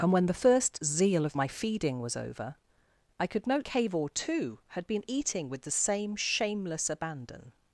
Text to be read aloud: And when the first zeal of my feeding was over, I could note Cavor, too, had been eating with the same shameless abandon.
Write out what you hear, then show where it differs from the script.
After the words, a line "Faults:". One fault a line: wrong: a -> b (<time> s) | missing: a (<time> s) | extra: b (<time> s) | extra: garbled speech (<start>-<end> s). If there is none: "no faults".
And when the first zeal of my feeding was over, I could note Cavor, too, had been eating with the same shameless abandon.
Faults:
no faults